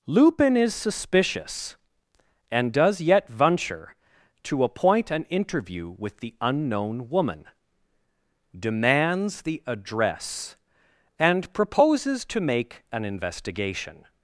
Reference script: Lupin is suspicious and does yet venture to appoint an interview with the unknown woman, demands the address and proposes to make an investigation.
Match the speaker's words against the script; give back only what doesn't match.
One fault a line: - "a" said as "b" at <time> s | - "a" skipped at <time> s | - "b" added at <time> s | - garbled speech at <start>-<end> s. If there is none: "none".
none